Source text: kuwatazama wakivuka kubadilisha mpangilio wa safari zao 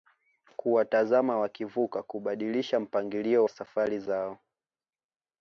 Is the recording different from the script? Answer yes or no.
yes